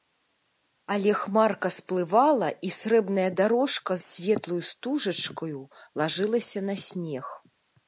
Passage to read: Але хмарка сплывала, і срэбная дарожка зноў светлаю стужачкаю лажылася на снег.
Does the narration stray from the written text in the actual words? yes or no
yes